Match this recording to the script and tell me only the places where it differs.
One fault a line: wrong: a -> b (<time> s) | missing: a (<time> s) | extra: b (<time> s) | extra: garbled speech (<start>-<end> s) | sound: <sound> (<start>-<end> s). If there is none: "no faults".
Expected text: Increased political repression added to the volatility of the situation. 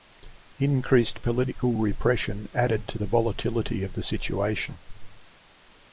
no faults